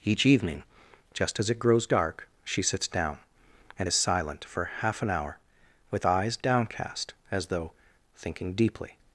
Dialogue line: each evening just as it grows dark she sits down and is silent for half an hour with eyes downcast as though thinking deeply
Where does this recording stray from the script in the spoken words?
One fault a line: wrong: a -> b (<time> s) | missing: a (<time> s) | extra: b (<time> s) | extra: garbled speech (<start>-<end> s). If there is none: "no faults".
no faults